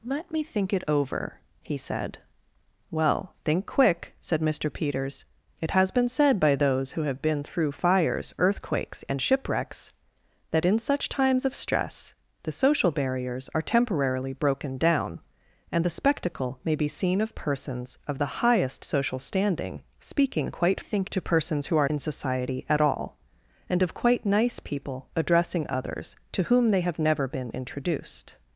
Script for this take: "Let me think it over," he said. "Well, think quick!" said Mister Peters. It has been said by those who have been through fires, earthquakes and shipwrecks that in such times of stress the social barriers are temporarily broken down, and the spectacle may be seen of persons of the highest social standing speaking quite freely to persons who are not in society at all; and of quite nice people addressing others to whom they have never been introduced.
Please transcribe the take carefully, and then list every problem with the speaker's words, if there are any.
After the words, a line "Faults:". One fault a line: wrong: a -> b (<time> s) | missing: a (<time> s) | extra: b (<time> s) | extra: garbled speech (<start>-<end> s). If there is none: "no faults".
"Let me think it over," he said. "Well, think quick!" said Mister Peters. It has been said by those who have been through fires, earthquakes and shipwrecks that in such times of stress the social barriers are temporarily broken down, and the spectacle may be seen of persons of the highest social standing speaking quite think to persons who are in society at all; and of quite nice people addressing others to whom they have never been introduced.
Faults:
wrong: freely -> think (20.8 s)
missing: not (21.9 s)